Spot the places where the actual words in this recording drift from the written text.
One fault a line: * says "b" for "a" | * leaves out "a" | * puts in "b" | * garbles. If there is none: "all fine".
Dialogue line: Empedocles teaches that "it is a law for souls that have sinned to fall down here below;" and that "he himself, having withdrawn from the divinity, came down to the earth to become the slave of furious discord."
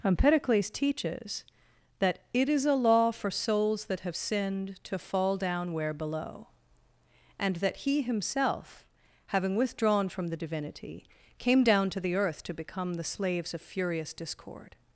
* says "where" for "here"
* says "slaves" for "slave"